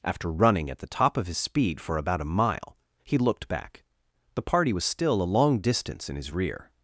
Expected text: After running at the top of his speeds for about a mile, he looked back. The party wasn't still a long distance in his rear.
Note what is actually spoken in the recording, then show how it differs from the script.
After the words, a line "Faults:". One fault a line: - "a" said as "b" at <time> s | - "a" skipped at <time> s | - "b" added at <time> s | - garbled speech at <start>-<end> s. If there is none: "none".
After running at the top of his speed for about a mile, he looked back. The party was still a long distance in his rear.
Faults:
- "speeds" said as "speed" at 1.4 s
- "wasn't" said as "was" at 4.7 s